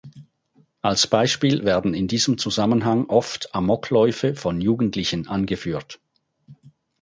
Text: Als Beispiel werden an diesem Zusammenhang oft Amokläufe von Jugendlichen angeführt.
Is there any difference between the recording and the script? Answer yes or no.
yes